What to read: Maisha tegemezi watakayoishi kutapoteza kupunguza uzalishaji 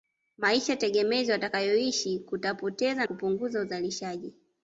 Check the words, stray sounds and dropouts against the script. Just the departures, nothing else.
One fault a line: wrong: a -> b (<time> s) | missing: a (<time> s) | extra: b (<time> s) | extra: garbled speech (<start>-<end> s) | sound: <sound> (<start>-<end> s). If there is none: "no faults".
no faults